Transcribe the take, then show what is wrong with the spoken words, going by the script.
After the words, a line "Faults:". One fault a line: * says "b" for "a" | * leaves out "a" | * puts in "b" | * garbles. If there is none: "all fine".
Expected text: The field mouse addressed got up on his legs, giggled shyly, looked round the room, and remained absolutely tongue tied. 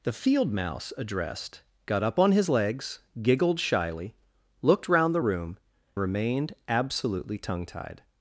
The field mouse addressed got up on his legs, giggled shyly, looked round the room, remained absolutely tongue tied.
Faults:
* leaves out "and"